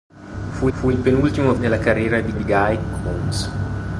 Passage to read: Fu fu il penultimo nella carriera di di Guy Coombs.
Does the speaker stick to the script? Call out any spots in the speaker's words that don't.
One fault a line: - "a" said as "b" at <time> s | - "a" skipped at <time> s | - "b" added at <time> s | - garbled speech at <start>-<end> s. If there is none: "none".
none